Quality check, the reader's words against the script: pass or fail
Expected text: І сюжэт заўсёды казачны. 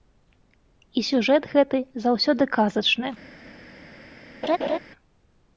fail